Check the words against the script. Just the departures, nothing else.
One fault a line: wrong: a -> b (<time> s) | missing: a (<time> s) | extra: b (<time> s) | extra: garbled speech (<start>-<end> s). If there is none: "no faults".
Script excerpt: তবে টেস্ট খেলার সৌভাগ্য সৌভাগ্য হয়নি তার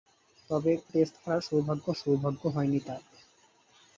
no faults